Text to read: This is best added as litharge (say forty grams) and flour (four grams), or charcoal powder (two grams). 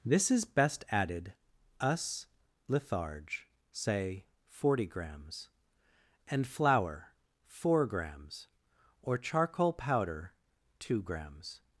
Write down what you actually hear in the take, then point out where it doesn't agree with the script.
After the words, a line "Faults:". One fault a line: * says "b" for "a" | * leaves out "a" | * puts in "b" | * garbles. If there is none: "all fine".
This is best added us litharge (say forty grams) and flour (four grams), or charcoal powder (two grams).
Faults:
* says "us" for "as"